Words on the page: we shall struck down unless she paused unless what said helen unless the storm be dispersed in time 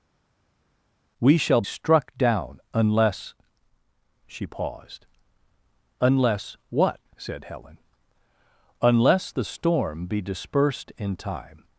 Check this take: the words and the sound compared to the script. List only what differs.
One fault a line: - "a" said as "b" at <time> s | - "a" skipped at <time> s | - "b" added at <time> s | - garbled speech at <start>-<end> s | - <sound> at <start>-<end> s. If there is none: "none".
none